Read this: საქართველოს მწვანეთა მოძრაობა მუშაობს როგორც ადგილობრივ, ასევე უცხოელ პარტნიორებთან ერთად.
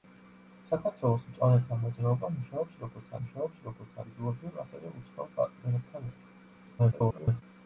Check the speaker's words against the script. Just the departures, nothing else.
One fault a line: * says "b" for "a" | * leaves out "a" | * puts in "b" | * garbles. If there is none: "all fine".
* puts in "მუშაობს როგორც"
* garbles